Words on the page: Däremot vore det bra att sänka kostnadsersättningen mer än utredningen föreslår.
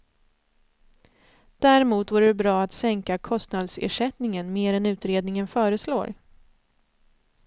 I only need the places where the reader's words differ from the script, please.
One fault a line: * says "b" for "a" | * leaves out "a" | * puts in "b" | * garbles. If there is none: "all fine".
all fine